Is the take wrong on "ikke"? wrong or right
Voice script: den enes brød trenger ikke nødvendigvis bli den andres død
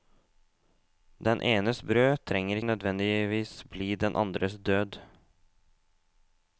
wrong